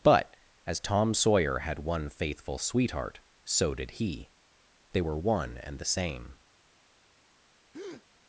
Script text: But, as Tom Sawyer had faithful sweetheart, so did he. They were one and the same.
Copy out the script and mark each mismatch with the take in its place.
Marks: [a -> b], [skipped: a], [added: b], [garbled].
But, as Tom Sawyer had [added: one] faithful sweetheart, so did he. They were one and the same.